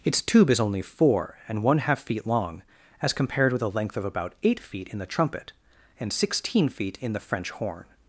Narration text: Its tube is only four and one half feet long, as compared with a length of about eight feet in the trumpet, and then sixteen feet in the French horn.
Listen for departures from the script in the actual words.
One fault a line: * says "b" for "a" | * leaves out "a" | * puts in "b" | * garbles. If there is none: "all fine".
* leaves out "then"